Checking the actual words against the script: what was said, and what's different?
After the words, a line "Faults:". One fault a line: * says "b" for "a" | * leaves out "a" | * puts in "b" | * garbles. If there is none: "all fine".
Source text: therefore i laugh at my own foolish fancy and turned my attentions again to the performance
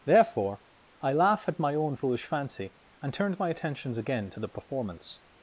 therefore i laugh at my own foolish fancy and turned my attentions again to the performance
Faults:
all fine